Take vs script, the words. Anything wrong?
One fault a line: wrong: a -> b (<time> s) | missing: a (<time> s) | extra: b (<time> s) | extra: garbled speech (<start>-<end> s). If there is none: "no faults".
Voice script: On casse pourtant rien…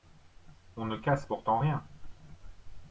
extra: ne (0.8 s)